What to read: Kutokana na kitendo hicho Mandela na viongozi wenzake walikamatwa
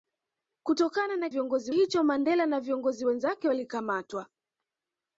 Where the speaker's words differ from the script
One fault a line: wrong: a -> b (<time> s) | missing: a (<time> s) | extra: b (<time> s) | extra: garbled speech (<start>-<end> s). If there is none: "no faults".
wrong: kitendo -> viongozi (1.3 s)